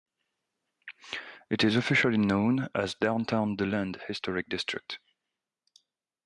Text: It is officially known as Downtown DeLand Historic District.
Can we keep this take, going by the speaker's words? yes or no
yes